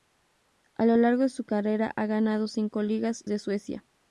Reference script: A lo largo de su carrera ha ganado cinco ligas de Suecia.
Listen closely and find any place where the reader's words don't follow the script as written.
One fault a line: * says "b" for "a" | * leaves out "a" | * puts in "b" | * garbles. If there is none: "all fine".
all fine